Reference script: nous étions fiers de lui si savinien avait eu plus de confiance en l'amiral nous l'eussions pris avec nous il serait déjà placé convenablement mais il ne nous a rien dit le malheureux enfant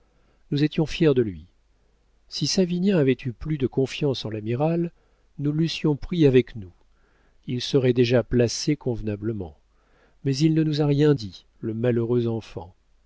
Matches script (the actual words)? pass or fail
pass